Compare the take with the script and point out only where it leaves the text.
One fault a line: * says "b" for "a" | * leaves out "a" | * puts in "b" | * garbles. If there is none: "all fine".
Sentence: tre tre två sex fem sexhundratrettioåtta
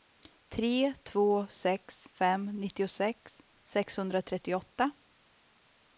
* leaves out "tre"
* puts in "nittiosex"